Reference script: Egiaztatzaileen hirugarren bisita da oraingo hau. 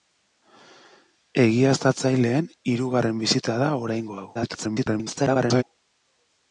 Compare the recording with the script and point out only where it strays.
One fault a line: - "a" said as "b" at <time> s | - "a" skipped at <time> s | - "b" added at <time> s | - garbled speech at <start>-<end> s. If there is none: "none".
- garbled speech at 4.3-5.6 s